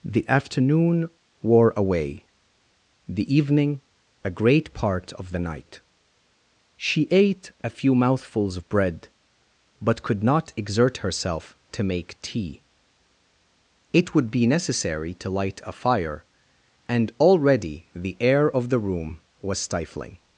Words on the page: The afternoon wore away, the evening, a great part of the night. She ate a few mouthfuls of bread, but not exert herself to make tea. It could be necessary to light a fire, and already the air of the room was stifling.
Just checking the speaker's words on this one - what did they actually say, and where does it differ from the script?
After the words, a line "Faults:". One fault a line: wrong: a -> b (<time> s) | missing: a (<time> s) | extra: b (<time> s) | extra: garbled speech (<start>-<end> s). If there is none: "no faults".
The afternoon wore away, the evening, a great part of the night. She ate a few mouthfuls of bread, but could not exert herself to make tea. It would be necessary to light a fire, and already the air of the room was stifling.
Faults:
extra: could (10.0 s)
wrong: could -> would (14.1 s)